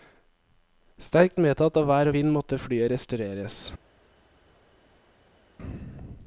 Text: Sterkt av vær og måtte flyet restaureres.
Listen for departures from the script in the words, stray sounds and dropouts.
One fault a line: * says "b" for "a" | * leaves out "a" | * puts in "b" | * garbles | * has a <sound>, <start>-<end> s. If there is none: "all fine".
* puts in "medtatt"
* puts in "vind"